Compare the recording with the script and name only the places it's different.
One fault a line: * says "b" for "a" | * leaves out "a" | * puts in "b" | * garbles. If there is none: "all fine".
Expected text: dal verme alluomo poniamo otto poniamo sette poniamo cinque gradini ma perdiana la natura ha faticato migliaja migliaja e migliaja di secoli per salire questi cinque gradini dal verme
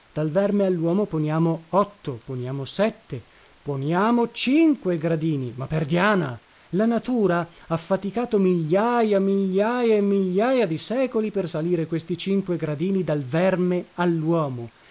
all fine